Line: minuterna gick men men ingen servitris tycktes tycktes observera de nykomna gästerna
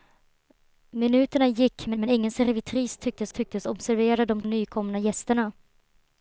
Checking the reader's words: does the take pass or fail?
pass